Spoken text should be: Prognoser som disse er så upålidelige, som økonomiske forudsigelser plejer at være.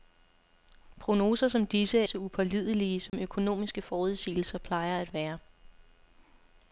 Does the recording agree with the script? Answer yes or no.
yes